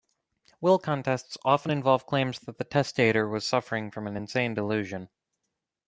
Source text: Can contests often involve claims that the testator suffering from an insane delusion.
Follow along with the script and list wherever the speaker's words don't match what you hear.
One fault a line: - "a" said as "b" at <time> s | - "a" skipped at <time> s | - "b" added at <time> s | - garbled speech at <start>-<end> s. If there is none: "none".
- "Can" said as "Will" at 0.6 s
- "was" added at 3.3 s